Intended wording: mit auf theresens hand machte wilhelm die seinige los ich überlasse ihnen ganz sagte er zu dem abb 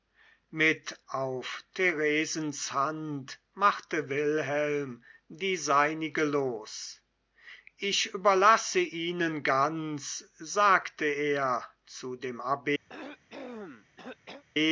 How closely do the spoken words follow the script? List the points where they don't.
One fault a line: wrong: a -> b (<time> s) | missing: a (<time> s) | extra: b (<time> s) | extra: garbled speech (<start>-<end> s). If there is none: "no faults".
no faults